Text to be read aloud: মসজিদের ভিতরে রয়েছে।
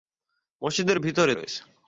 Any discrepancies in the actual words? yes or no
no